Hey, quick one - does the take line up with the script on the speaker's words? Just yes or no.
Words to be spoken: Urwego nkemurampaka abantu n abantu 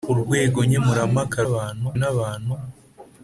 yes